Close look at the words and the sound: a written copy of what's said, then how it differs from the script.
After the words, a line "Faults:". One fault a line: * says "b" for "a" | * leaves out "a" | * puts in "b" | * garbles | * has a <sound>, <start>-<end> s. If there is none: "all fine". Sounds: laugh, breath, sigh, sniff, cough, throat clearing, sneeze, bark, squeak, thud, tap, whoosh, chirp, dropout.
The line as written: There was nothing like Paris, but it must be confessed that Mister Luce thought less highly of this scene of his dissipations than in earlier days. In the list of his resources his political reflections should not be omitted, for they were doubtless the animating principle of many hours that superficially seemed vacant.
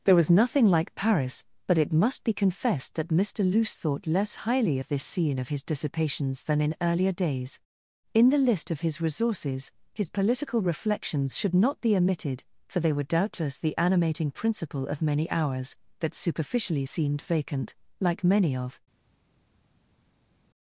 There was nothing like Paris, but it must be confessed that Mister Luce thought less highly of this scene of his dissipations than in earlier days. In the list of his resources his political reflections should not be omitted, for they were doubtless the animating principle of many hours that superficially seemed vacant. Like many of
Faults:
* puts in "Like many of"